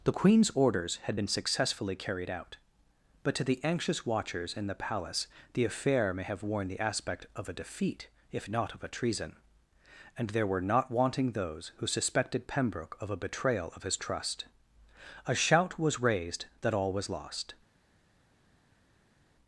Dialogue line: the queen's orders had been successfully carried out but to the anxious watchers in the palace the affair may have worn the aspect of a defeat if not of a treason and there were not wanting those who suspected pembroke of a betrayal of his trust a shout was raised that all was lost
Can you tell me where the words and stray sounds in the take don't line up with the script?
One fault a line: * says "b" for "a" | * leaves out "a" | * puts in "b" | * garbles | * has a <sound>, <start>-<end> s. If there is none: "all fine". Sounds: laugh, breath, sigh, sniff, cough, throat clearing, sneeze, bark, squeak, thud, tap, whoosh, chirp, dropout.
all fine